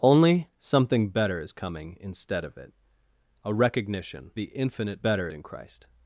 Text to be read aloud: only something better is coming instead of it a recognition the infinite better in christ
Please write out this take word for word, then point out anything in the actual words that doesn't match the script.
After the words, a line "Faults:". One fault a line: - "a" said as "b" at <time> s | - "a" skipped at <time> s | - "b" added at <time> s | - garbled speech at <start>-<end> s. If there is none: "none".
only something better is coming instead of it a recognition the infinite better in christ
Faults:
none